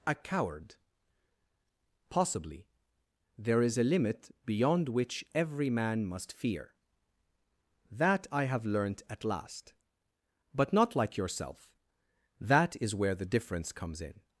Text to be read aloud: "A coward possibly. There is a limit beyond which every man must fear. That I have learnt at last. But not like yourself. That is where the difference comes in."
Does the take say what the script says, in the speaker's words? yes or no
yes